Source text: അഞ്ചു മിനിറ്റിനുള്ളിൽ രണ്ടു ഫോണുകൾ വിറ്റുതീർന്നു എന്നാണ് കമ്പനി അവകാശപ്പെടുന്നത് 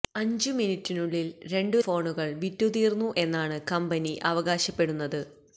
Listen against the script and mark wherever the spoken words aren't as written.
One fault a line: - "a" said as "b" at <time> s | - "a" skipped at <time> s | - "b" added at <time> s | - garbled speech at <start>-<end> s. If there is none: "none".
none